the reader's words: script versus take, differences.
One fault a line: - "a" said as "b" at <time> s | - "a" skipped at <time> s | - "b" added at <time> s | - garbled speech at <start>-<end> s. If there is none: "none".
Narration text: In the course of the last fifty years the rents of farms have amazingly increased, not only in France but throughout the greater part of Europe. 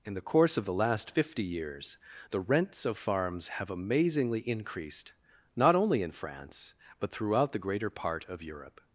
none